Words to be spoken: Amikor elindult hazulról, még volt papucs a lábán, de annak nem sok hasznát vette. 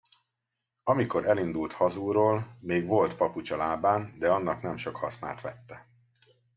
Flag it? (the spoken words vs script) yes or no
no